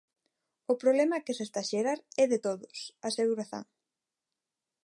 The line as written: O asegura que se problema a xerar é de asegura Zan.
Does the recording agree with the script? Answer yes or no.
no